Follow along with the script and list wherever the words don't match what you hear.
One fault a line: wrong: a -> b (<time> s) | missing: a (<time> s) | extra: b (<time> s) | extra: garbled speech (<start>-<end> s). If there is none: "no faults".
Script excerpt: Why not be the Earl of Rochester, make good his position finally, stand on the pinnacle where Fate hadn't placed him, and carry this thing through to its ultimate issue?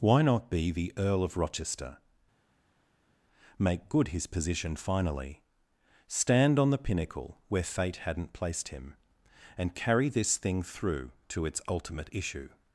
no faults